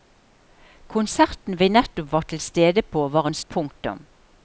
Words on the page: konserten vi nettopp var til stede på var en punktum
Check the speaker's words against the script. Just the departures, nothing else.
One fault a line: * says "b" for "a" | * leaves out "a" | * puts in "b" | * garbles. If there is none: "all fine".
all fine